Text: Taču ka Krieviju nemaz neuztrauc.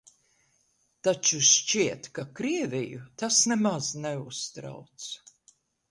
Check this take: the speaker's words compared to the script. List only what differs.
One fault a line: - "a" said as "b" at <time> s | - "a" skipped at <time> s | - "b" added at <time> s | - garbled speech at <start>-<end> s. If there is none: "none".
- "šķiet" added at 1.5 s
- "tas" added at 3.2 s